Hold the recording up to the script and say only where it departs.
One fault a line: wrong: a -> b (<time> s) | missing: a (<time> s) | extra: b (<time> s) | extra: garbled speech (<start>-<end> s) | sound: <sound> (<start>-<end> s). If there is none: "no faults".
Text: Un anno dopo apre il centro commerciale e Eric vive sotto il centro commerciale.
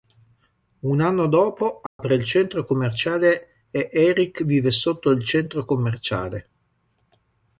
sound: dropout (1.9-2.0 s)